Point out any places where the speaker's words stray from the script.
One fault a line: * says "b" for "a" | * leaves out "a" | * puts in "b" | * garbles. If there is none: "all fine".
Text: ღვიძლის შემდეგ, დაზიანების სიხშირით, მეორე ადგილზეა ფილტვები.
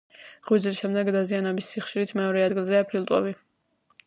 all fine